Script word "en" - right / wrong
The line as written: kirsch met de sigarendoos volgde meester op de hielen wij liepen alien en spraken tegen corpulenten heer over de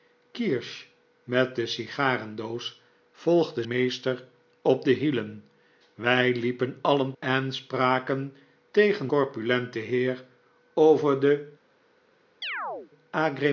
right